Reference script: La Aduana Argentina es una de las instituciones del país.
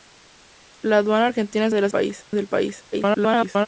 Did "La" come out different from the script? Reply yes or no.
no